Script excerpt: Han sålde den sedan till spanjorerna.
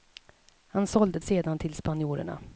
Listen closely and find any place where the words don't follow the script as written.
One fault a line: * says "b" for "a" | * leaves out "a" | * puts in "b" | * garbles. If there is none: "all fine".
* leaves out "den"